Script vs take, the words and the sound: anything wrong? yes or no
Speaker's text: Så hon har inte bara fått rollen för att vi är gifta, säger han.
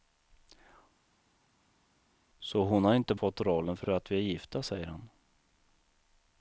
yes